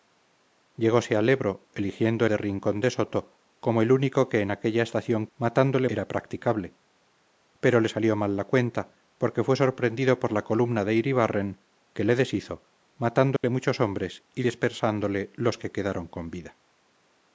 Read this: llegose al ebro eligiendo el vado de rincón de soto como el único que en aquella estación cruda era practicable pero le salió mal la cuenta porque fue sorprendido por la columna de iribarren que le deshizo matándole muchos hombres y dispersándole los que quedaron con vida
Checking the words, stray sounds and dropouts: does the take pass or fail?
fail